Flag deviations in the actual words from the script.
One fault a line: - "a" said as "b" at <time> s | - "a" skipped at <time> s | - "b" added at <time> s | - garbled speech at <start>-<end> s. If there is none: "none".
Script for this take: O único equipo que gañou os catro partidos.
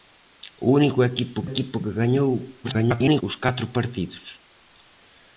- "equipo" added at 1.5 s
- garbled speech at 2.6-3.2 s